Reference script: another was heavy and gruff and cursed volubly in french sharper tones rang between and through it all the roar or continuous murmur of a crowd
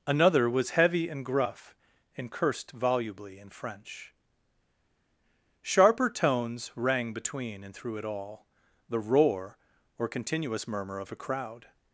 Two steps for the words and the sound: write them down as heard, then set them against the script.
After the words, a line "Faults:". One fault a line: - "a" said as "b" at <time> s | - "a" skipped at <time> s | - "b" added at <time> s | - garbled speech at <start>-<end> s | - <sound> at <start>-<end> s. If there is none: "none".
another was heavy and gruff and cursed volubly in french sharper tones rang between and through it all the roar or continuous murmur of a crowd
Faults:
none